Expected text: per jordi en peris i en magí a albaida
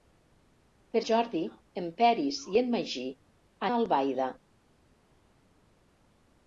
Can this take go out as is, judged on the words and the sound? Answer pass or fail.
pass